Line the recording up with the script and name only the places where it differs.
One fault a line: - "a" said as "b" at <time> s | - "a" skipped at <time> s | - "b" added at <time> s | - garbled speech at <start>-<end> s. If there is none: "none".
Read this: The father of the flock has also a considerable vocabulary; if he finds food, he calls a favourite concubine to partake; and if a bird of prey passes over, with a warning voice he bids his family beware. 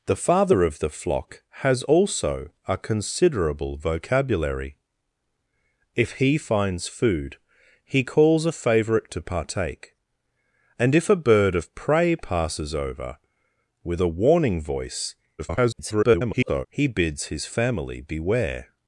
- "concubine" skipped at 9.1 s
- garbled speech at 15.4-16.7 s